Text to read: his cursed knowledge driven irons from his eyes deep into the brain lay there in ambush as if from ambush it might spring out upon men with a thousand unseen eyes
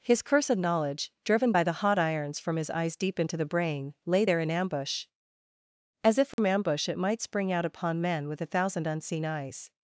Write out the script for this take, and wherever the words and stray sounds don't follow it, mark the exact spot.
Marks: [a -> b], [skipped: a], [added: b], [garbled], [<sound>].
his cursed knowledge driven [added: by the hot] irons from his eyes deep into the brain lay there in ambush as if from [dropout] ambush it might spring out upon men with a thousand unseen eyes